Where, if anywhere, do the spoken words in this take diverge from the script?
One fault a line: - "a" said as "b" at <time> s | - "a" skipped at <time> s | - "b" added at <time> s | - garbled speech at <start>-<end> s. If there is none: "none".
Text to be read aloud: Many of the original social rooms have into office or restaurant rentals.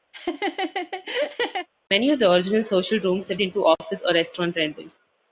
none